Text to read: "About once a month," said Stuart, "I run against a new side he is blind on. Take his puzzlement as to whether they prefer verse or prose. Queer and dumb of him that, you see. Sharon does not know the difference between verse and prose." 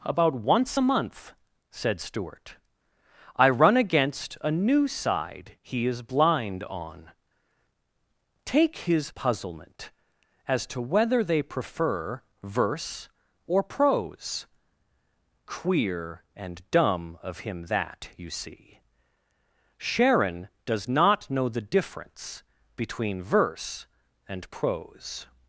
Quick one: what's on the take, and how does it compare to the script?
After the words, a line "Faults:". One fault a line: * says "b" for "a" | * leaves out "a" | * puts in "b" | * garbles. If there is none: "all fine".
"About once a month," said Stuart, "I run against a new side he is blind on. Take his puzzlement as to whether they prefer verse or prose. Queer and dumb of him that, you see. Sharon does not know the difference between verse and prose."
Faults:
all fine